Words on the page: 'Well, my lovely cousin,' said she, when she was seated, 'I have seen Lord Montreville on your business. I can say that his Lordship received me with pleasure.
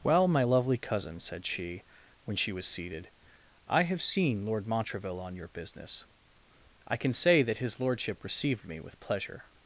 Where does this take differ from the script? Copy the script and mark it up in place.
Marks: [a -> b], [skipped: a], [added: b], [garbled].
'Well, my lovely cousin,' said she, when she was seated, 'I have seen Lord Montreville on your business. I can say that his Lordship received me with pleasure.